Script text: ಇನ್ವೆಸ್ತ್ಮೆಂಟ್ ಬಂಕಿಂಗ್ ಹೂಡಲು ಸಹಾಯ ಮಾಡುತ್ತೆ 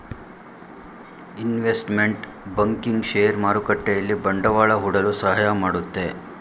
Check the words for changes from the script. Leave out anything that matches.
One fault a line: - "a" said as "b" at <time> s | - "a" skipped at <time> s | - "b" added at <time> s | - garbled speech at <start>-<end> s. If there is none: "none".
- "ಶೇರ್ ಮಾರುಕಟ್ಟೆಯಲ್ಲಿ ಬಂಡವಾಳ" added at 3.0 s